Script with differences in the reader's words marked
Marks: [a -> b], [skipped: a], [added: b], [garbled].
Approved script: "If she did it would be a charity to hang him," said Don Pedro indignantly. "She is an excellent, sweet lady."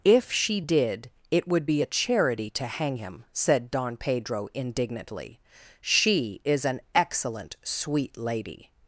"If she did it would be a charity to hang him," said Don Pedro indignantly. "She is an excellent, sweet lady."